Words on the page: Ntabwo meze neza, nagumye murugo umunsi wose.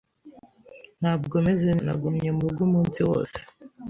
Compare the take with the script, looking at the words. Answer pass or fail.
fail